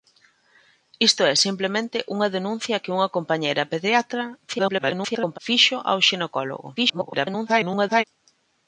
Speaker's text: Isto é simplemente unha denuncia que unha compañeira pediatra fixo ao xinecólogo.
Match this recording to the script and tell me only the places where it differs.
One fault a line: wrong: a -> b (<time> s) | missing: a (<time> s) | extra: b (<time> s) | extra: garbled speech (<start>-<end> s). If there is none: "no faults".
extra: garbled speech (4.5-5.4 s)
extra: garbled speech (6.8-8.0 s)